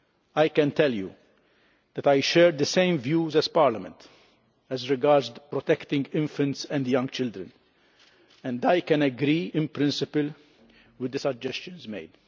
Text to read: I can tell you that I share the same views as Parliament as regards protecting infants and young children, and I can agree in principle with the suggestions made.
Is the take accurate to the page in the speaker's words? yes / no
yes